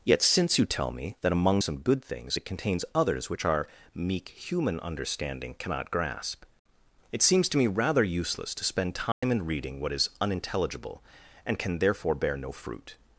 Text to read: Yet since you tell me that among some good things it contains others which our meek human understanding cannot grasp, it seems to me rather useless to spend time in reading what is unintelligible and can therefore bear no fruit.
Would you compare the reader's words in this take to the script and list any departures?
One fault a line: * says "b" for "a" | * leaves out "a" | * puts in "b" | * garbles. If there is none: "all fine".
all fine